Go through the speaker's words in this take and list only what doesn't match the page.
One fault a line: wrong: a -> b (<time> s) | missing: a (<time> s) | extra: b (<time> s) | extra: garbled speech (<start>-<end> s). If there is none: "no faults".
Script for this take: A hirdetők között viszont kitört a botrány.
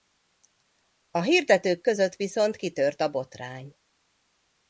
no faults